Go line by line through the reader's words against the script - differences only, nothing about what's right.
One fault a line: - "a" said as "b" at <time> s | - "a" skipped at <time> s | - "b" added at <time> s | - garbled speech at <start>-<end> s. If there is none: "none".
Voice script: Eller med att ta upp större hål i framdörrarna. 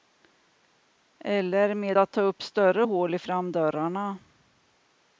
none